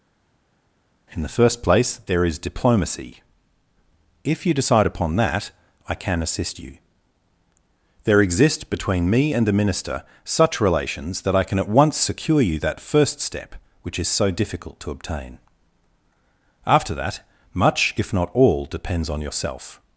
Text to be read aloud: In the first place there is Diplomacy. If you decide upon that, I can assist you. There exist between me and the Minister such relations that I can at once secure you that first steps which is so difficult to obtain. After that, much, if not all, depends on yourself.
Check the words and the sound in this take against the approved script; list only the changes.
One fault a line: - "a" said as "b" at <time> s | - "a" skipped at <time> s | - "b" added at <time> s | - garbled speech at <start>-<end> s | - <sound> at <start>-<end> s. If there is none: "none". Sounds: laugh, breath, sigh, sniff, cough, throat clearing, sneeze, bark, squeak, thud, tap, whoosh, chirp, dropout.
- "steps" said as "step" at 13.2 s